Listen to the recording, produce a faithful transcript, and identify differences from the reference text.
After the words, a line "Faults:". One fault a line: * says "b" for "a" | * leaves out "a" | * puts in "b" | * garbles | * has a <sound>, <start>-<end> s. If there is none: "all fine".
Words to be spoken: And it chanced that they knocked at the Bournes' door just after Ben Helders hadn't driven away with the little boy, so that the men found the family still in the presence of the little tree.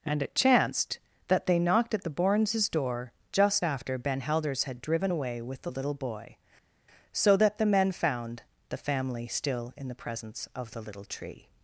And it chanced that they knocked at the Bournes' door just after Ben Helders had driven away with the little boy, so that the men found the family still in the presence of the little tree.
Faults:
* says "had" for "hadn't"